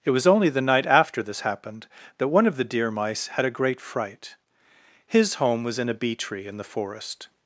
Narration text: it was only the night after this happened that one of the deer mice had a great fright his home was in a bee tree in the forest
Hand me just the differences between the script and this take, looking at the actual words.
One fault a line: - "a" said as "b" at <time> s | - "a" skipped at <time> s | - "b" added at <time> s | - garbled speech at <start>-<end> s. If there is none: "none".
none